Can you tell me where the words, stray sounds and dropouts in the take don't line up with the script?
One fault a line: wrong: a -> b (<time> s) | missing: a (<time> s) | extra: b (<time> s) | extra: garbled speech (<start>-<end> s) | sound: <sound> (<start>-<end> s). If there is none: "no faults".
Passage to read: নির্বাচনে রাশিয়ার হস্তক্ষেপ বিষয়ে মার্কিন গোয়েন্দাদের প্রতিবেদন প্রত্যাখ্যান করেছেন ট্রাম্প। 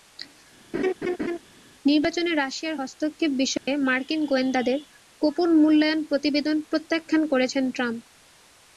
sound: laugh (0.7-1.4 s)
sound: dropout (3.6-3.7 s)
extra: গোপন মূল্যায়ন (5.2 s)